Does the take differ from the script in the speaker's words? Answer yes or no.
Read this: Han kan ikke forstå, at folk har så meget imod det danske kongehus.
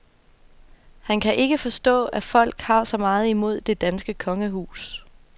no